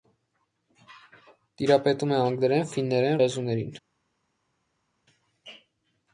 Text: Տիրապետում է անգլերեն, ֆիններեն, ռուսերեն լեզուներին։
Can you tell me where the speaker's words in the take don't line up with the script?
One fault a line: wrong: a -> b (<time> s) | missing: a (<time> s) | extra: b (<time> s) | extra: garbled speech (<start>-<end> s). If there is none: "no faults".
missing: ռուսերեն (3.2 s)